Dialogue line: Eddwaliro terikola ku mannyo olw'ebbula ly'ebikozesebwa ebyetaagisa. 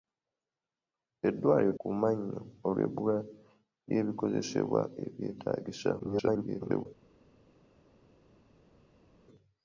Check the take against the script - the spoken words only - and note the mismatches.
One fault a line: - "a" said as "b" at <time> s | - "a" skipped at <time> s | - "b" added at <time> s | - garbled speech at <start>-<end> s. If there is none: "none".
- "terikola" skipped at 1.7 s
- garbled speech at 6.0-6.9 s